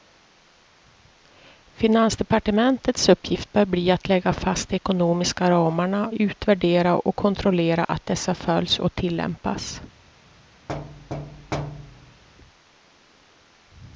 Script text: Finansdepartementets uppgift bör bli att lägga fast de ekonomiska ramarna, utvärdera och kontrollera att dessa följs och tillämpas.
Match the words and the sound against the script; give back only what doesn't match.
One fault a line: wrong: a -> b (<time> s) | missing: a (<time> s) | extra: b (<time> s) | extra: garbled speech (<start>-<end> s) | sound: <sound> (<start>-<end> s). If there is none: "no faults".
sound: thud (10.7-12.2 s)